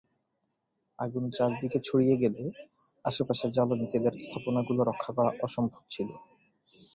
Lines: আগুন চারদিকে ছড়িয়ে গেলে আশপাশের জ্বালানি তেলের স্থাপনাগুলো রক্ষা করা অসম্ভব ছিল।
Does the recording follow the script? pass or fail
pass